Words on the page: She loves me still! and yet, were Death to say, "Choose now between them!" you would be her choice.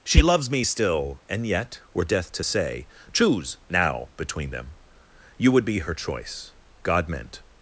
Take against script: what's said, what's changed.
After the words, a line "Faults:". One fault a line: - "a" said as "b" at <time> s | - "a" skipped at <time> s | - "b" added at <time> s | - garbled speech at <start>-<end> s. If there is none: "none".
She loves me still! and yet, were Death to say, "Choose now between them!" you would be her choice. God meant
Faults:
- "God meant" added at 6.8 s